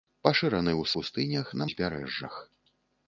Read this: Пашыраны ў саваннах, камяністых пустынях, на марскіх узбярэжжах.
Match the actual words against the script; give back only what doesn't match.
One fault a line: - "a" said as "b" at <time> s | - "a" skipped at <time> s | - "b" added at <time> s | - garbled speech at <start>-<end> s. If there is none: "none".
- "саваннах камяністых" skipped at 0.9 s
- "марскіх" skipped at 1.7 s